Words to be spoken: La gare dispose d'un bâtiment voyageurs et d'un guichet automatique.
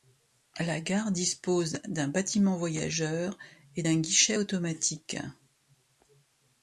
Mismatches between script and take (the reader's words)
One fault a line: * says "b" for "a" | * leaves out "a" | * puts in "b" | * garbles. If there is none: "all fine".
all fine